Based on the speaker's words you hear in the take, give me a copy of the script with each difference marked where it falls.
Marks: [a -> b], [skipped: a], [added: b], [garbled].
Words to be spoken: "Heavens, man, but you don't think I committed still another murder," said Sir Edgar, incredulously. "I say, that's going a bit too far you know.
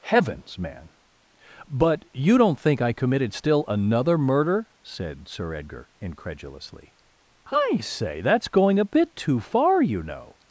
"Heavens, man, but you don't think I committed still another murder," said Sir Edgar, incredulously. "I say, that's going a bit too far you know.